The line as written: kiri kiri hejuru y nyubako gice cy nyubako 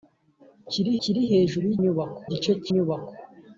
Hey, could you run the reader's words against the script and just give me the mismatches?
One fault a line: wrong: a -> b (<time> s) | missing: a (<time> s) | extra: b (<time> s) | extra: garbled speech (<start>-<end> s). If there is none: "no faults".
no faults